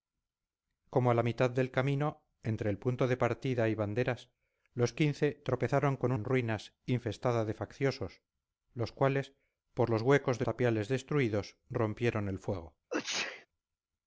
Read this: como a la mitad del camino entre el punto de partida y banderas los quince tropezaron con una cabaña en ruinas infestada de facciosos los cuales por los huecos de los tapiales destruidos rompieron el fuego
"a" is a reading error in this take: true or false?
false